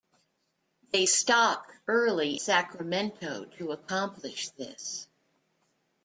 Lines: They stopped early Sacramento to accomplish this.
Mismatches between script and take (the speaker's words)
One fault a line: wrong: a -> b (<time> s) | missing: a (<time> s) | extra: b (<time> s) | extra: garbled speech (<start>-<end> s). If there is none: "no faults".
no faults